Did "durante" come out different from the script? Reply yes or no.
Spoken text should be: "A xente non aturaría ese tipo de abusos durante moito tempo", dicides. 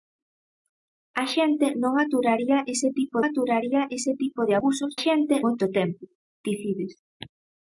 yes